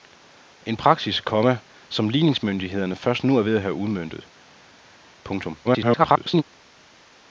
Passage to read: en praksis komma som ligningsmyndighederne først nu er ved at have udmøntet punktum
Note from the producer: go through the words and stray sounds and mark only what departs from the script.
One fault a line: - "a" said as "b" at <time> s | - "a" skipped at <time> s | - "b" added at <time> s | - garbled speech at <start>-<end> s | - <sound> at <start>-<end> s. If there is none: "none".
- garbled speech at 5.6-6.4 s